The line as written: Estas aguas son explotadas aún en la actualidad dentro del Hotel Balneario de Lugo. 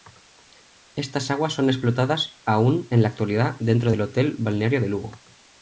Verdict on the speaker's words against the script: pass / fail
pass